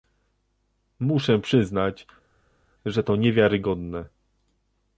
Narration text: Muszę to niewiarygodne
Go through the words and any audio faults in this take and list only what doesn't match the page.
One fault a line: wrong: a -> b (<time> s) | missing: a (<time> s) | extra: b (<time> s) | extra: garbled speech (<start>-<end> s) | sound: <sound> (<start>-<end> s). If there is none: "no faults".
extra: przyznać że (1.4 s)